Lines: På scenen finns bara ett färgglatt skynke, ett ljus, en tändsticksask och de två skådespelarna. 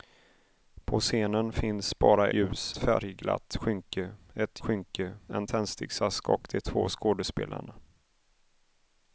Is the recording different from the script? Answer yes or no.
yes